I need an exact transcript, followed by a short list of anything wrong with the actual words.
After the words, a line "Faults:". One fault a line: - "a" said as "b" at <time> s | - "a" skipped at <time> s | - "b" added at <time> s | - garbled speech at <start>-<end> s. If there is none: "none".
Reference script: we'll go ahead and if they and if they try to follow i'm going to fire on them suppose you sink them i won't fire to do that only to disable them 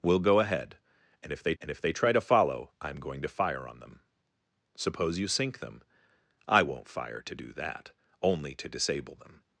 we'll go ahead and if they and if they try to follow i'm going to fire on them suppose you sink them i won't fire to do that only to disable them
Faults:
none